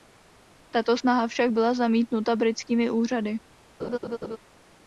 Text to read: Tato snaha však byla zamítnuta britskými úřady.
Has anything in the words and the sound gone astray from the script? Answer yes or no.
yes